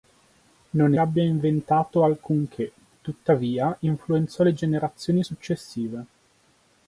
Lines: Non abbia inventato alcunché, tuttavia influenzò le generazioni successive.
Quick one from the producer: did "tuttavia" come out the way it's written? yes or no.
yes